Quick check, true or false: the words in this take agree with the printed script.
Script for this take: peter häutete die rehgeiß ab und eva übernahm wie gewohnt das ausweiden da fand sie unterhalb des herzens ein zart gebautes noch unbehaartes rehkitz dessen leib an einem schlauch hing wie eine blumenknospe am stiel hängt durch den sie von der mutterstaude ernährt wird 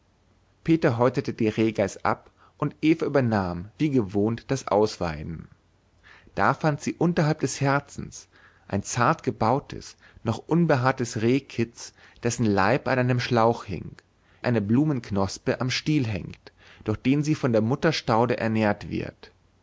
false